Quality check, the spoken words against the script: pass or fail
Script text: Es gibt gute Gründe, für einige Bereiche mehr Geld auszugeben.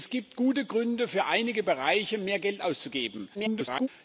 fail